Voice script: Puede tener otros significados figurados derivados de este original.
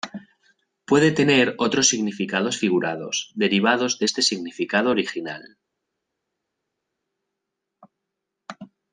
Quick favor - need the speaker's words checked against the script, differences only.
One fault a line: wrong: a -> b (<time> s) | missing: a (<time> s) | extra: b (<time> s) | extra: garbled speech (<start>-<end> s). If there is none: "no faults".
extra: significado (4.2 s)